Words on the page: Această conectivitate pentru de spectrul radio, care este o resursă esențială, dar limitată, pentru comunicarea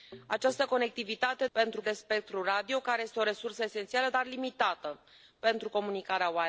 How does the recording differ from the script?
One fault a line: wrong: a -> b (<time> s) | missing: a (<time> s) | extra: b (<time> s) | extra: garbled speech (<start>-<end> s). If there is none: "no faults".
no faults